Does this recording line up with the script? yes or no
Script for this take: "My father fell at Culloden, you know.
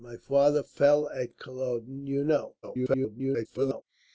no